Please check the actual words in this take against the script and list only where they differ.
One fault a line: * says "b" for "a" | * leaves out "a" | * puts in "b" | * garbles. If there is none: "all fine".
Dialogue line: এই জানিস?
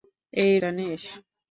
all fine